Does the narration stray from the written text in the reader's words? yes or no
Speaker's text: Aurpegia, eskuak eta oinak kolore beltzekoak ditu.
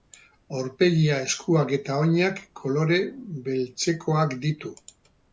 no